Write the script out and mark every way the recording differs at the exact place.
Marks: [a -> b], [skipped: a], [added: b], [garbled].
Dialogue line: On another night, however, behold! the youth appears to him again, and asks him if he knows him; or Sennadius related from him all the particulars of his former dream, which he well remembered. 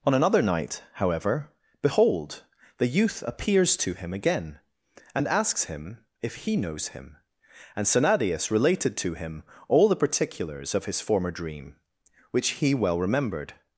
On another night, however, behold! the youth appears to him again, and asks him if he knows him; [or -> and] Sennadius related [from -> to] him all the particulars of his former dream, which he well remembered.